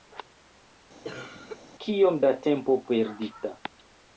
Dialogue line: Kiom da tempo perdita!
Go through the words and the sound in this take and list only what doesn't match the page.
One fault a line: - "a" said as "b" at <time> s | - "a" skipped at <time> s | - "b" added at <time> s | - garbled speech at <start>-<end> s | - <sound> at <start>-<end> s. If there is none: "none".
- cough at 1.0-1.6 s